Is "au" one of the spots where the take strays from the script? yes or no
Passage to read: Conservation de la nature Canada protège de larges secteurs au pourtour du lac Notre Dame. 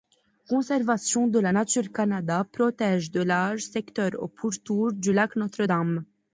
no